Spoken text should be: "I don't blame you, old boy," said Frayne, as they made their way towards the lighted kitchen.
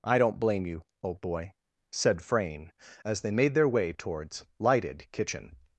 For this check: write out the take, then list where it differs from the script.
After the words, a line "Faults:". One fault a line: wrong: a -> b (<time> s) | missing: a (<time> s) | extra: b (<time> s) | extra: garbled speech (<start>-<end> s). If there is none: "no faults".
"I don't blame you, old boy," said Frayne, as they made their way towards lighted kitchen.
Faults:
missing: the (4.5 s)